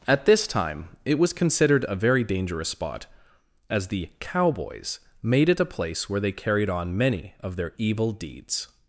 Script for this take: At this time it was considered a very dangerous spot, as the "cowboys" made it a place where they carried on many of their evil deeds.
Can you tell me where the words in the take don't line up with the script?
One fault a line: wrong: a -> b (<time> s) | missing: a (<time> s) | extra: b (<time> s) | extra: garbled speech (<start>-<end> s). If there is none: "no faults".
no faults